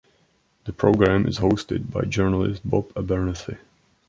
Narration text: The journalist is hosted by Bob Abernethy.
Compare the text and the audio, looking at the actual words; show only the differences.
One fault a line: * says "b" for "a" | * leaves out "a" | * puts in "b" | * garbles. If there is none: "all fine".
* says "program" for "journalist"
* puts in "journalist"